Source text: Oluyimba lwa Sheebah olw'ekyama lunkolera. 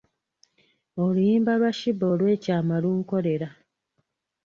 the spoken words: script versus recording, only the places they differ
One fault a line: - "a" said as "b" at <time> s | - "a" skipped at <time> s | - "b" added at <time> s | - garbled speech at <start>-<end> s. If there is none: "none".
none